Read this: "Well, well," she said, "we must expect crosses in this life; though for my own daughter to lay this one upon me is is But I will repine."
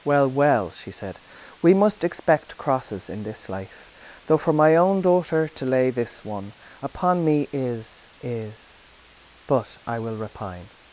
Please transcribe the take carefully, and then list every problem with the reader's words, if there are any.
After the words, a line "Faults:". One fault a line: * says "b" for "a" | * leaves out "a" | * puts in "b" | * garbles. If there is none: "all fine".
"Well, well," she said, "we must expect crosses in this life; though for my own daughter to lay this one upon me is is But I will repine."
Faults:
all fine